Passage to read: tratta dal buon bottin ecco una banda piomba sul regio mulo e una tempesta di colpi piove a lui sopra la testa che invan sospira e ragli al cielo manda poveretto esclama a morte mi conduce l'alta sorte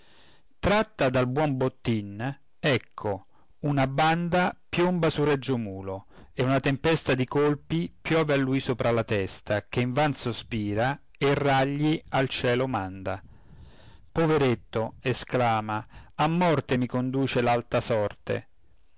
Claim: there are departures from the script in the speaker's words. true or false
false